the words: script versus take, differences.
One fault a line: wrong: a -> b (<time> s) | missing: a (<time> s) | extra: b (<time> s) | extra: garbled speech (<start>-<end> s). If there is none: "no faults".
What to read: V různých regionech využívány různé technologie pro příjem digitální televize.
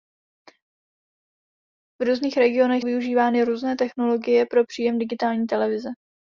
no faults